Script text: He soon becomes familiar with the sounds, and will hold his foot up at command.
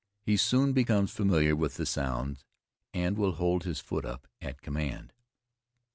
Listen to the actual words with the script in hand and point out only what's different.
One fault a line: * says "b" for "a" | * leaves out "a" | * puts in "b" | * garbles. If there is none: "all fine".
all fine